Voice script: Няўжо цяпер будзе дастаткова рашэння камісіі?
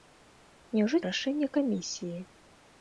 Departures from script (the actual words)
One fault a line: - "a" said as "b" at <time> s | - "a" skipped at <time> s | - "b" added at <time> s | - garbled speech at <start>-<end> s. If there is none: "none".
- "цяпер будзе дастаткова" skipped at 1.0 s